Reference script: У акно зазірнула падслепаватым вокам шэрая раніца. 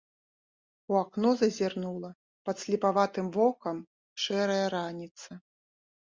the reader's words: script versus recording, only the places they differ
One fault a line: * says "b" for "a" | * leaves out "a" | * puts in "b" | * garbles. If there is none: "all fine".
all fine